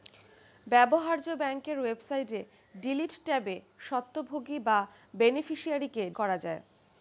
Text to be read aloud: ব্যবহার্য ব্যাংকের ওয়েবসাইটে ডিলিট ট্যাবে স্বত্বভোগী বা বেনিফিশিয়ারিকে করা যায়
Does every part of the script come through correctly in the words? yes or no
yes